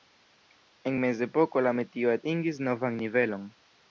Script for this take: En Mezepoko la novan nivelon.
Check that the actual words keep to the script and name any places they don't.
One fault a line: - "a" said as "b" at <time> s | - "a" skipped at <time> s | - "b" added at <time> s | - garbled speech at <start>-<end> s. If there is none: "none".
- "metio atingis" added at 1.8 s